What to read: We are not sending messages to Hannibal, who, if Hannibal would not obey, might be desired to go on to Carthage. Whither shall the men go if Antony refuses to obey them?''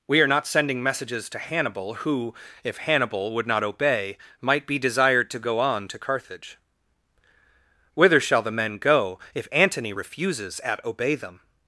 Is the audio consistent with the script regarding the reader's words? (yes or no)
no